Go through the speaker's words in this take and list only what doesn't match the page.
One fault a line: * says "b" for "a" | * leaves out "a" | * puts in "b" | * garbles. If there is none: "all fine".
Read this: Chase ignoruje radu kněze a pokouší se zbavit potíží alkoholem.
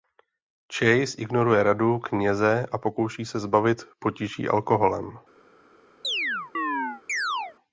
all fine